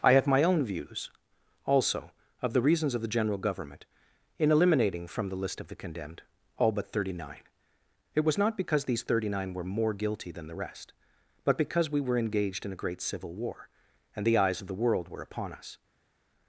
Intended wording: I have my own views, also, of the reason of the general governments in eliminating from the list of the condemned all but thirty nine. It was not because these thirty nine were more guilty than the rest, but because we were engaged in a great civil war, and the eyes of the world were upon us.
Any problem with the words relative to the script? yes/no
yes